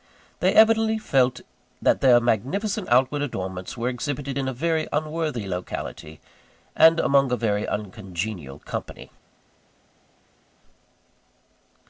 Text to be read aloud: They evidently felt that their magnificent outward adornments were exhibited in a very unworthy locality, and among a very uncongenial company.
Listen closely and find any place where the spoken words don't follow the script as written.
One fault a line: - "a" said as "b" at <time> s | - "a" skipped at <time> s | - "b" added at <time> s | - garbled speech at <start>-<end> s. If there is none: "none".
none